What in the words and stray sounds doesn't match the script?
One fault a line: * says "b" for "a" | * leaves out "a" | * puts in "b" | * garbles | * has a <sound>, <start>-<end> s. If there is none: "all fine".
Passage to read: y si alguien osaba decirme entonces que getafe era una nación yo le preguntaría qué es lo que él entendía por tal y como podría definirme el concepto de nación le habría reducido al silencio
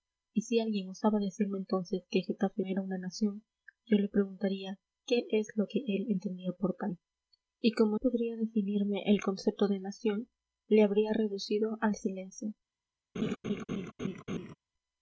* has a laugh, 13.2-14.6 s